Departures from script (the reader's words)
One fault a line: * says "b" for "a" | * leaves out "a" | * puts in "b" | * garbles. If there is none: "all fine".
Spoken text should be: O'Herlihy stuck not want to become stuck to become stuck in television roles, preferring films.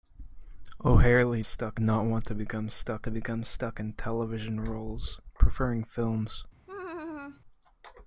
all fine